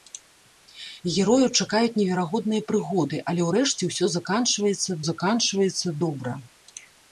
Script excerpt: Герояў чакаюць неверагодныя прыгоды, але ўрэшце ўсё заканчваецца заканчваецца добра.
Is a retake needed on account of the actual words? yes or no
no